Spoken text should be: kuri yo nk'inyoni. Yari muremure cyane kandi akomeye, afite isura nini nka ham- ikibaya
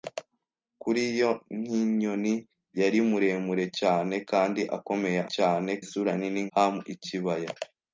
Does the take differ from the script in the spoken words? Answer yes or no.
yes